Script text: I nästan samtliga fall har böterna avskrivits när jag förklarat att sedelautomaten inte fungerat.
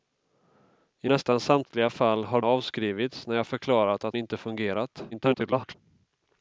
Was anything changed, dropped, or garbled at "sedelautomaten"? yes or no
yes